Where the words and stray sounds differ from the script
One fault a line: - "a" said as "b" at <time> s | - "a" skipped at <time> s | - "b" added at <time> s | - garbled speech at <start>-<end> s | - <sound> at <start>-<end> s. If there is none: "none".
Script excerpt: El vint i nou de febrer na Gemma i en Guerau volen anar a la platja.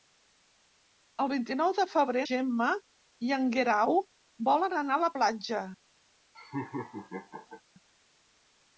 - "na" skipped at 2.2 s
- laugh at 6.3-7.6 s